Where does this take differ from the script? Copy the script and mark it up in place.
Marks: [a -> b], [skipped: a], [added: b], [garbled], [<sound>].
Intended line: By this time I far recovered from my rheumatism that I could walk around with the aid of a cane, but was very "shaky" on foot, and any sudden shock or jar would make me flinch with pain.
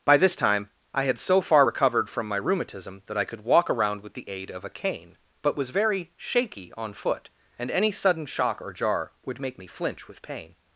By this time I [added: had so] far recovered from my rheumatism that I could walk around with the aid of a cane, but was very "shaky" on foot, and any sudden shock or jar would make me flinch with pain.